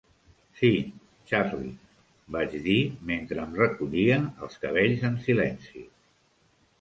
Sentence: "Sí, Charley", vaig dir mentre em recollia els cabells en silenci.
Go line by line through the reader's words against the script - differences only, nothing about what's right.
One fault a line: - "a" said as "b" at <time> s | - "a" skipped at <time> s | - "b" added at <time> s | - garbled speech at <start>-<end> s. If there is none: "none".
none